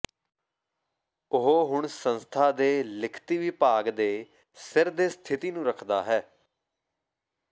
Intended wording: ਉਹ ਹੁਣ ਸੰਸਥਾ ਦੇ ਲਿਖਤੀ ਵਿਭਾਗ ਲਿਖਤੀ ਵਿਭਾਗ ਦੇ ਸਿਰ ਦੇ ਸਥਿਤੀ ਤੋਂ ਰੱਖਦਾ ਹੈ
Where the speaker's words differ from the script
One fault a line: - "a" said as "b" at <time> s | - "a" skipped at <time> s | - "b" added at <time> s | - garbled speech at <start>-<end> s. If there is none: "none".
- "ਲਿਖਤੀ ਵਿਭਾਗ" skipped at 3.9 s
- "ਤੋਂ" said as "ਨੂੰ" at 5.5 s